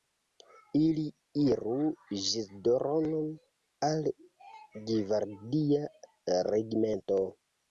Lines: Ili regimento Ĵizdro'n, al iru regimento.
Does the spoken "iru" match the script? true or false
false